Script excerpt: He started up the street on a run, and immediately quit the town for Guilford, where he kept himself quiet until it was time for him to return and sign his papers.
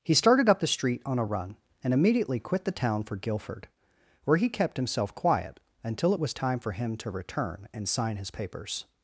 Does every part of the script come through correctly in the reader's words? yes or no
yes